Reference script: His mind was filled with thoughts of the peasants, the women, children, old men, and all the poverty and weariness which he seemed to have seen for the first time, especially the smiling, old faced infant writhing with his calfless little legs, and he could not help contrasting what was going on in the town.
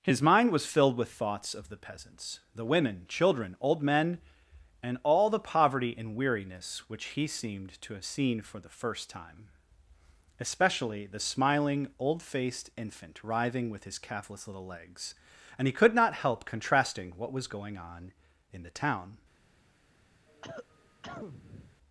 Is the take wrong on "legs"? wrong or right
right